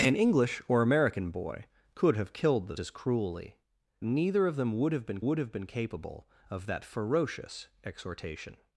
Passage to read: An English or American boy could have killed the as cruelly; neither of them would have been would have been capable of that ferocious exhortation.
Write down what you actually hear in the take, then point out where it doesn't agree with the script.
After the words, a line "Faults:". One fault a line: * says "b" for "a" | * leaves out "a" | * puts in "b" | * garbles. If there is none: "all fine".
An English or American boy could have killed the as cruelly; neither of them would have been would have been capable of that ferocious exhortation.
Faults:
all fine